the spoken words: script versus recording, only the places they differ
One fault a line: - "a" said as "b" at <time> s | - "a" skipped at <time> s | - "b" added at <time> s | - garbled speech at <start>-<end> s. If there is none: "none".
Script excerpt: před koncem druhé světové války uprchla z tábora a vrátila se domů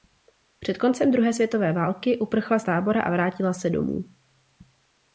none